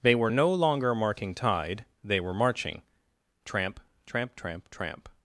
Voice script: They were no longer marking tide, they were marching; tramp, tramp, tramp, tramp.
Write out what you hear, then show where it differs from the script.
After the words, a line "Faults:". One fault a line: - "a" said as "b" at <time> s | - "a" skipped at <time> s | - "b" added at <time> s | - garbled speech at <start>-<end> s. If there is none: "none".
They were no longer marking tide, they were marching; tramp, tramp, tramp, tramp.
Faults:
none